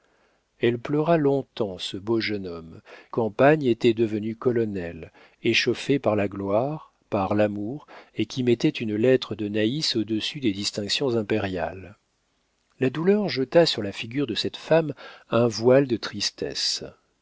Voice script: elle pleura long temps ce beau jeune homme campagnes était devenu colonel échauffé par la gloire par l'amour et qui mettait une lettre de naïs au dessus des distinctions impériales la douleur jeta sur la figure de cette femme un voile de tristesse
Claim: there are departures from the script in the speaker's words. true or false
false